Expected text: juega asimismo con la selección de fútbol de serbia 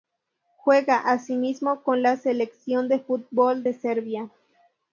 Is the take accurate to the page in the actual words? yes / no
yes